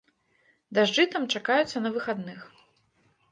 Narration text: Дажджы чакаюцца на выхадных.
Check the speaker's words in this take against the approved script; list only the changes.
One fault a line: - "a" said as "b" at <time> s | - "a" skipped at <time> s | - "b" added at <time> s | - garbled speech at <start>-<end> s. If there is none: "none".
- "там" added at 1.1 s